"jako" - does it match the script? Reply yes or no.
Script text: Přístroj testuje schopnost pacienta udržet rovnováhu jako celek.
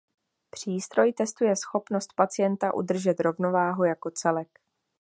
yes